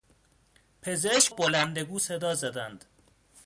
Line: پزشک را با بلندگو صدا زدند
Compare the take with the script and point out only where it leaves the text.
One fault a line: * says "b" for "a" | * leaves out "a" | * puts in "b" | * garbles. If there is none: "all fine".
* leaves out "را با"